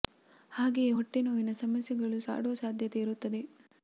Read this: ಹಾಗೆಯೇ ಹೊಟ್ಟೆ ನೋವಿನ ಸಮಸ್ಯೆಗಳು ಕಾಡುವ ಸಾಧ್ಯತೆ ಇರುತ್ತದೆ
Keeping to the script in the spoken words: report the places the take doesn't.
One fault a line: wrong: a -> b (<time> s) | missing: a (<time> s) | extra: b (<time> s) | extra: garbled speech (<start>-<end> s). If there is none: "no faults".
no faults